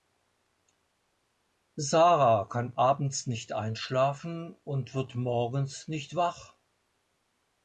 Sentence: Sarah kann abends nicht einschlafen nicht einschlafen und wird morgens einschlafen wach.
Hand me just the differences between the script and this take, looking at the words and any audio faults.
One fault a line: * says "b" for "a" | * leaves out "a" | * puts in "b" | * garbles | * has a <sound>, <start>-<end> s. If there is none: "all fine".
* leaves out "nicht einschlafen"
* says "nicht" for "einschlafen"